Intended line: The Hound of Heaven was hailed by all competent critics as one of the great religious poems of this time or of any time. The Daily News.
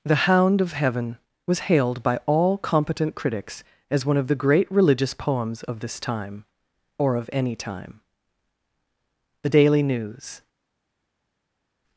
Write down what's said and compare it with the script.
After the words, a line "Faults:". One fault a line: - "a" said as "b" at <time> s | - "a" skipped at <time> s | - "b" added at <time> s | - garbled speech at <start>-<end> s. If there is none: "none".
The Hound of Heaven was hailed by all competent critics as one of the great religious poems of this time or of any time. The Daily News.
Faults:
none